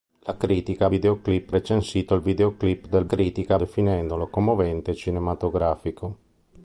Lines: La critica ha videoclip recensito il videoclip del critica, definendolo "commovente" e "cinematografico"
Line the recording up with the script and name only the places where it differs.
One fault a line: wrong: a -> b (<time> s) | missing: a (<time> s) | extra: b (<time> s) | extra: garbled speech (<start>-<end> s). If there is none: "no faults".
no faults